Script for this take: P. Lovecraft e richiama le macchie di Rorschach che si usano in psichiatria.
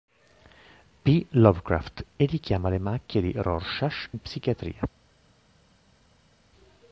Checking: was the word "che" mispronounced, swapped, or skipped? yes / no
yes